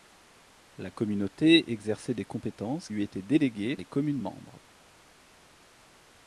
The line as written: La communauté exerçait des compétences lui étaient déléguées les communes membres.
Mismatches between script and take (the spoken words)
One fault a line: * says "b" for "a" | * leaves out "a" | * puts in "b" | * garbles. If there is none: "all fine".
all fine